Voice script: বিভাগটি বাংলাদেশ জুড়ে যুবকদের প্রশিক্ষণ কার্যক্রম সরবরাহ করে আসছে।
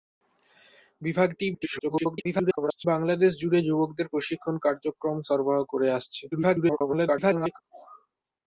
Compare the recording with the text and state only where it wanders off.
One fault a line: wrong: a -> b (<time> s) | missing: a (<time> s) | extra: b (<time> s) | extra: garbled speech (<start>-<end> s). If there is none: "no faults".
extra: garbled speech (1.5-2.8 s)
extra: garbled speech (6.3-7.6 s)